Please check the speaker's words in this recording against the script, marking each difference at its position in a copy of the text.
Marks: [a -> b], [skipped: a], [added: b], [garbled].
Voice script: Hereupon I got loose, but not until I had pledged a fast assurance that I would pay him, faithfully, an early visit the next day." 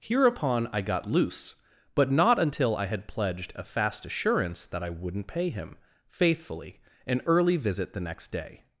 Hereupon I got loose, but not until I had pledged a fast assurance that I [would -> wouldn't] pay him, faithfully, an early visit the next day."